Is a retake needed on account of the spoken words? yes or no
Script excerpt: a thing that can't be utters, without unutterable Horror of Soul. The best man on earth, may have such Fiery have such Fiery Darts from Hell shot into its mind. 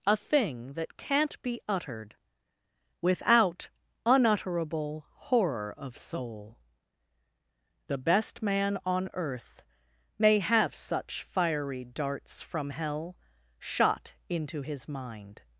yes